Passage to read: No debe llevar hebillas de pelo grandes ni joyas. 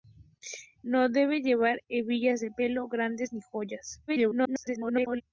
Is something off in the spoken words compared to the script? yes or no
yes